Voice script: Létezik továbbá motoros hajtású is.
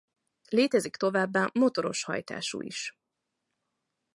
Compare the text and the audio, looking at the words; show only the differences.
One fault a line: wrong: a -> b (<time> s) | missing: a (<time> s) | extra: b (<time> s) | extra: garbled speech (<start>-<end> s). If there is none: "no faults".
no faults